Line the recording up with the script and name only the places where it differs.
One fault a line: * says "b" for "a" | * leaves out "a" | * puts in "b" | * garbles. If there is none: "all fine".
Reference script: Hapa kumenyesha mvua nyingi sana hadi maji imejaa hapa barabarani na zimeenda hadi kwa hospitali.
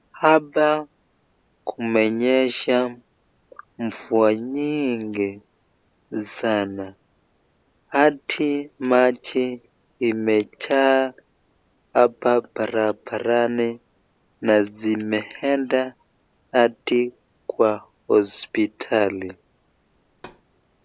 all fine